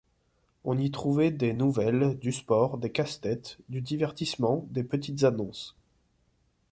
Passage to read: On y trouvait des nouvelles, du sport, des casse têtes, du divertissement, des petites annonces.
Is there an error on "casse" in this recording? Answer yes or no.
no